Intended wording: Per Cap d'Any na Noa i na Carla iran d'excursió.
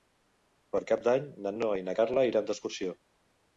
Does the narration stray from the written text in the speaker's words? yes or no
no